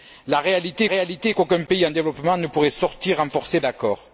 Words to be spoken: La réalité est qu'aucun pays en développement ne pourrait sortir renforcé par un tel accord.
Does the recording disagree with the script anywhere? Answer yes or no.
yes